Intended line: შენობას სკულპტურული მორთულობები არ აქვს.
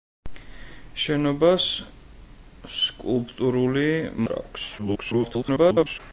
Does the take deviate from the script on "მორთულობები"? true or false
true